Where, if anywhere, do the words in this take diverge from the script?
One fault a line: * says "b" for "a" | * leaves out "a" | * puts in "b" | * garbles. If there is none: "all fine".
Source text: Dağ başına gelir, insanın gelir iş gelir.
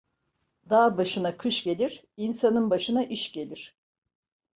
* puts in "kış"
* says "başına" for "gelir"